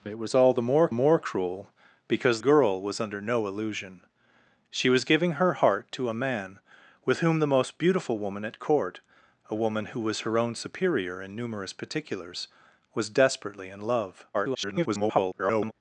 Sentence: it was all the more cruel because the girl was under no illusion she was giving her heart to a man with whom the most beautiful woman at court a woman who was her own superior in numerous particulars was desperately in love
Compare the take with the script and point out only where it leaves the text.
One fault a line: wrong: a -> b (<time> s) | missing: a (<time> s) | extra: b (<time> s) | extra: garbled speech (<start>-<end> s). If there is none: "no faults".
extra: more (0.9 s)
missing: the (2.4 s)
extra: garbled speech (14.3-15.7 s)